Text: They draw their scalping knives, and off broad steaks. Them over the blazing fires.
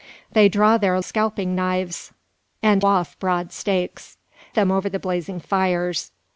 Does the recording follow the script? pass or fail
pass